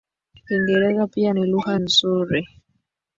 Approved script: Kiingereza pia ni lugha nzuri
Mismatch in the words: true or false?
false